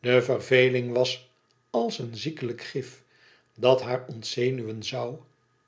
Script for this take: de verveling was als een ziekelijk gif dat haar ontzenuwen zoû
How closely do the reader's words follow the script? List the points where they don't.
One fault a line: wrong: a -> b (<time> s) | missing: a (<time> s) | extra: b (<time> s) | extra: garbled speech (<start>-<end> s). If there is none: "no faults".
no faults